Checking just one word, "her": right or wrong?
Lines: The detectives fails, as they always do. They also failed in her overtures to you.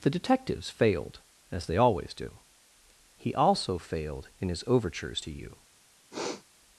wrong